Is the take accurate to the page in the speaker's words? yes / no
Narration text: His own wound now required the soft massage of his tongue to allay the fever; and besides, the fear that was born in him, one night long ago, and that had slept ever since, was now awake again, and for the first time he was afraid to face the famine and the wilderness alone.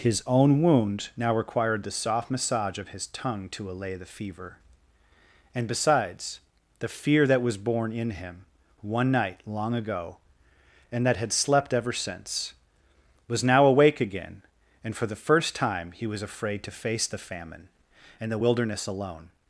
yes